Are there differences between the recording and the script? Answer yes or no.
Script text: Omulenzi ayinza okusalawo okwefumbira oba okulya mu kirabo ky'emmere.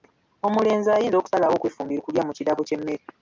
yes